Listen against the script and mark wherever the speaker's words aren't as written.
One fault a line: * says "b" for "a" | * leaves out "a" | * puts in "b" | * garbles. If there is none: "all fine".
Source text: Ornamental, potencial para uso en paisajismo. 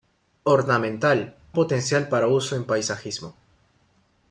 all fine